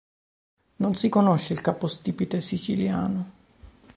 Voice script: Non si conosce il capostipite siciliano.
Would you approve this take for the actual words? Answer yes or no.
yes